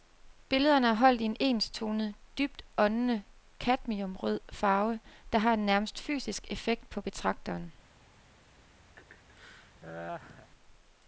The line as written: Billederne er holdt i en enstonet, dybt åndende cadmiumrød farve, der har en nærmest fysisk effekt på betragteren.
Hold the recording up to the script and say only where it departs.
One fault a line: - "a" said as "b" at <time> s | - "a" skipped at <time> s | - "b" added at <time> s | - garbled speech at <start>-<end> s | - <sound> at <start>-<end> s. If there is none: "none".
- laugh at 9.0-10.5 s